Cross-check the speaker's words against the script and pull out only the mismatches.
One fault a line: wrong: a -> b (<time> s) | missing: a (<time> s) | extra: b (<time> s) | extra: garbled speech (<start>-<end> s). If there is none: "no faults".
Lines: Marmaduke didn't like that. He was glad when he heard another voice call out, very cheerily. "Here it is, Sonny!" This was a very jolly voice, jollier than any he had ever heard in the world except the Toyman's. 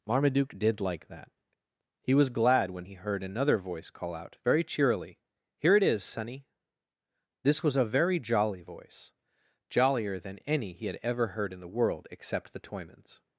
wrong: didn't -> did (0.6 s)